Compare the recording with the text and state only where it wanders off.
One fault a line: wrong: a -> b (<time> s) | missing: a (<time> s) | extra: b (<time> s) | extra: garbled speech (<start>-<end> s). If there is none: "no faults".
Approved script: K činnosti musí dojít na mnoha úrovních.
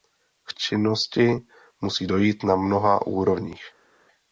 no faults